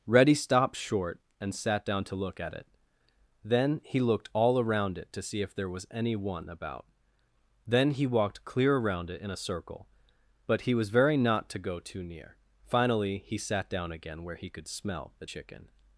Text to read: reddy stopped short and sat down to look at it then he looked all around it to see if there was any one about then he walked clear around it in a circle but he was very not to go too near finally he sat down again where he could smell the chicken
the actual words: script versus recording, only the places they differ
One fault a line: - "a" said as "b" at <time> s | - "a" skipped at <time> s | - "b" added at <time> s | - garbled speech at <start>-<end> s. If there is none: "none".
none